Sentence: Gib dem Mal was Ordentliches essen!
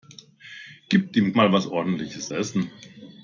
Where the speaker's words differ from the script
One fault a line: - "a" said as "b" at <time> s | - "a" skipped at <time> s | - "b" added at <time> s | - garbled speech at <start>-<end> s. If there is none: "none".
none